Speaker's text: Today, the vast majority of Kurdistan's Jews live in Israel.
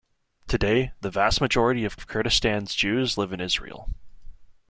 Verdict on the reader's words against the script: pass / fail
fail